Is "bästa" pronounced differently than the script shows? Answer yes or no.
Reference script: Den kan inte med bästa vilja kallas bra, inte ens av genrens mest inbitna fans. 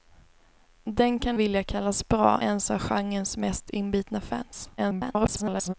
yes